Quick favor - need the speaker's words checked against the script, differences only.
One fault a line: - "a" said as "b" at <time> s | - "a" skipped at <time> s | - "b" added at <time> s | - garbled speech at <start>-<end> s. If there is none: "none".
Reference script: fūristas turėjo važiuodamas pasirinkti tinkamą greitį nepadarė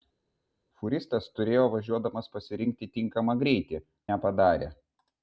none